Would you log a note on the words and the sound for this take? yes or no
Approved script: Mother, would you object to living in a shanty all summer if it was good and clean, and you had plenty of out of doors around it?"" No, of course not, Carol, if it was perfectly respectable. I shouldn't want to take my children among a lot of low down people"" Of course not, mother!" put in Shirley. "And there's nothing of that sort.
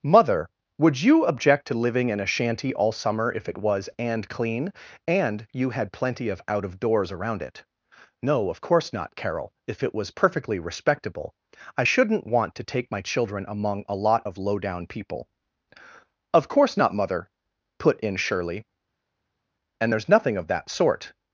yes